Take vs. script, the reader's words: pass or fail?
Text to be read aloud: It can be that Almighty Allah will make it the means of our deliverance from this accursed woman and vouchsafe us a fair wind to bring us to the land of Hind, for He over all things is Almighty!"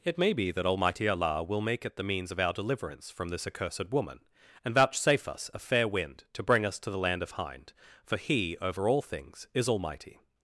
fail